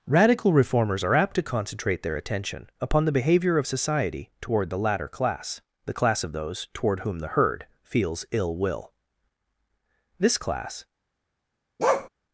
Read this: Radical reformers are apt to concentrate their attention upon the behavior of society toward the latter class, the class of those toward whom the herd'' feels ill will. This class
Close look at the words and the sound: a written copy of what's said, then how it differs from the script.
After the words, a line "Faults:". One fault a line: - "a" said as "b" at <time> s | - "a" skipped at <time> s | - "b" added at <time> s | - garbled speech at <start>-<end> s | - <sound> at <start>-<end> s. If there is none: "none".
Radical reformers are apt to concentrate their attention upon the behavior of society toward the latter class, the class of those toward whom the herd'' feels ill will. This class
Faults:
- bark at 11.8-12.1 s